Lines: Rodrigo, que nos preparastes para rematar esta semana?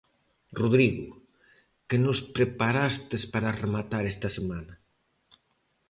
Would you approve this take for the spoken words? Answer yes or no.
yes